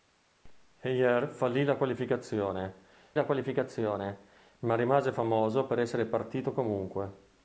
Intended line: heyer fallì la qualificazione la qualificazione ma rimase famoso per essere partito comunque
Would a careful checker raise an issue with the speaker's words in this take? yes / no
no